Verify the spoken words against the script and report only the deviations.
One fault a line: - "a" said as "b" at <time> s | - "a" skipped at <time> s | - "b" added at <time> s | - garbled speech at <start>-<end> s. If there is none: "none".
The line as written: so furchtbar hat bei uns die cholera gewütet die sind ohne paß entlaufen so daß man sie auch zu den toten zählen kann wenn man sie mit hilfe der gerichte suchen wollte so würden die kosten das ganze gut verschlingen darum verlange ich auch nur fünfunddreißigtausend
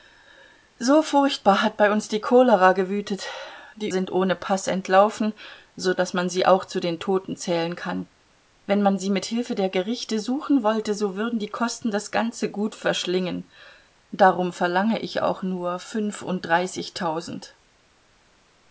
none